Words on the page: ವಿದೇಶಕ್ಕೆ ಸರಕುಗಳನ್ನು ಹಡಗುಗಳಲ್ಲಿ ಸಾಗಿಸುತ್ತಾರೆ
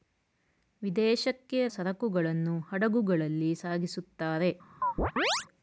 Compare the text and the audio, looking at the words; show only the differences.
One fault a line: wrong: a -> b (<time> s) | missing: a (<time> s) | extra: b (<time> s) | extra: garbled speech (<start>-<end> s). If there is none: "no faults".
no faults